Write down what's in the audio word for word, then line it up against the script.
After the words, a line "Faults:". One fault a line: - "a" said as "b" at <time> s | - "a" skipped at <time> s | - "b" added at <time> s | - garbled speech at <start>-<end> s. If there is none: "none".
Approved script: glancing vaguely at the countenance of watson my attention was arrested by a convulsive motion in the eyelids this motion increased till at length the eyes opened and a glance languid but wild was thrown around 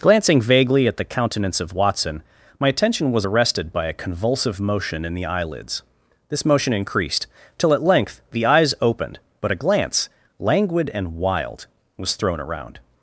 glancing vaguely at the countenance of watson my attention was arrested by a convulsive motion in the eyelids this motion increased till at length the eyes opened but a glance languid and wild was thrown around
Faults:
- "and" said as "but" at 9.4 s
- "but" said as "and" at 10.9 s